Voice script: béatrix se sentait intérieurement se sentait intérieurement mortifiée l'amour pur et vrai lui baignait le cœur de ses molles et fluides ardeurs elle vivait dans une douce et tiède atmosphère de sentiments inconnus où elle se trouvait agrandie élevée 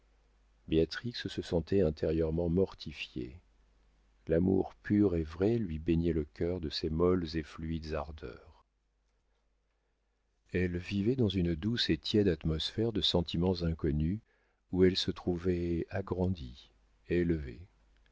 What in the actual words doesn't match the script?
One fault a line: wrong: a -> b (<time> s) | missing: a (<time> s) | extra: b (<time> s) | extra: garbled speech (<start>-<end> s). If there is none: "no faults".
missing: se sentait intérieurement (2.5 s)